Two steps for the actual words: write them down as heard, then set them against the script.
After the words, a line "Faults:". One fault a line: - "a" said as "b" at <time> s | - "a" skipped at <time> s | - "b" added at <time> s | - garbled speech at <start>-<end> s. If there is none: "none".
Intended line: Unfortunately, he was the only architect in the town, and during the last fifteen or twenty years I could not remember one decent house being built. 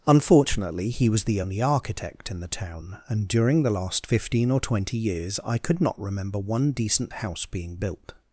Unfortunately, he was the only architect in the town, and during the last fifteen or twenty years I could not remember one decent house being built.
Faults:
none